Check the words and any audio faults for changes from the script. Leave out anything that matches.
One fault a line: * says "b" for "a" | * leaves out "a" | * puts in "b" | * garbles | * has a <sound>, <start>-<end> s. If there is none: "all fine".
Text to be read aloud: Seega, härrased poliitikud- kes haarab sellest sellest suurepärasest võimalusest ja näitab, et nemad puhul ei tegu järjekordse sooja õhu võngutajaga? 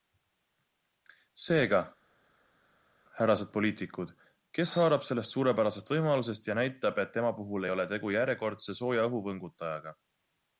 * leaves out "sellest"
* says "tema" for "nemad"
* puts in "ole"